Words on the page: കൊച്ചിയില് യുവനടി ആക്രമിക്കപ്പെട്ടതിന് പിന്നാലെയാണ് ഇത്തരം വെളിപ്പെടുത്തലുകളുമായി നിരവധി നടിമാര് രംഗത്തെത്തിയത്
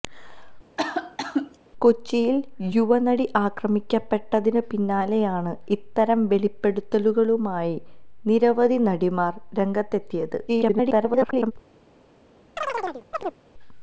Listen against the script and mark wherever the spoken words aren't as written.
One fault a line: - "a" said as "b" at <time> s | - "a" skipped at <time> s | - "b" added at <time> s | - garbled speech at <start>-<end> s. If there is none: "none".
- garbled speech at 10.5-11.5 s